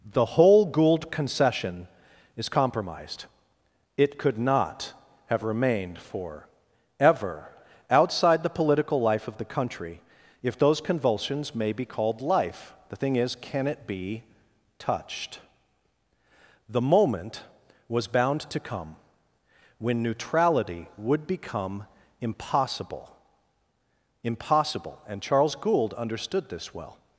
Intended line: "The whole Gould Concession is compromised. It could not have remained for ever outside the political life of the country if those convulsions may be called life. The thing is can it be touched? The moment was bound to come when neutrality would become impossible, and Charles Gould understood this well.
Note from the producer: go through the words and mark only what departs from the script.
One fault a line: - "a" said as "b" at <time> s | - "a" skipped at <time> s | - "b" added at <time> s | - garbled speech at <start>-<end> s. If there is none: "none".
- "impossible" added at 24.2 s